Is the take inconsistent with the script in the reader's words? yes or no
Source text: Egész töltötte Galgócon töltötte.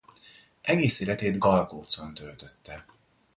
yes